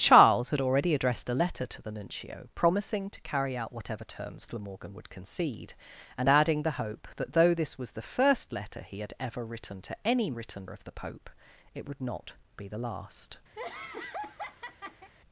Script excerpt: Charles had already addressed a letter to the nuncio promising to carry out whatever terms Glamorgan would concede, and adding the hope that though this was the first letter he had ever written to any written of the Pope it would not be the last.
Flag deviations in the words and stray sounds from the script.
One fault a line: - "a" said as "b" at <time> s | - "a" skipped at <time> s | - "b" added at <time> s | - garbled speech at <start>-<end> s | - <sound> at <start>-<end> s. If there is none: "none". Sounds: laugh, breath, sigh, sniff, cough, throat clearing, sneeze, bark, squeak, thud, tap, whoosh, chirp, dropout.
- laugh at 13.6-15.1 s